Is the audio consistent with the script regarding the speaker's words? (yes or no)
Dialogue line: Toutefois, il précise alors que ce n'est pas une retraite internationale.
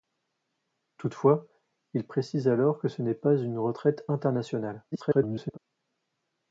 no